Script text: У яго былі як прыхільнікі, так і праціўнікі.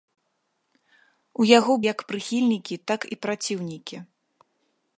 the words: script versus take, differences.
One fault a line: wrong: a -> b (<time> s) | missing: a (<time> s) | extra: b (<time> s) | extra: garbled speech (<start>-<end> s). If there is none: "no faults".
missing: былі (1.7 s)